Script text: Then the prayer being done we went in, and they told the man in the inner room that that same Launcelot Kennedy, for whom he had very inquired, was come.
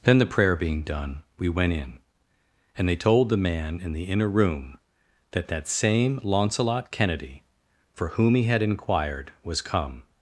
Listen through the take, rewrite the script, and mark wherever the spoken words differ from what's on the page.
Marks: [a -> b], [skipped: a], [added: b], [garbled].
Then the prayer being done we went in, and they told the man in the inner room that that same Launcelot Kennedy, for whom he had [skipped: very] inquired, was come.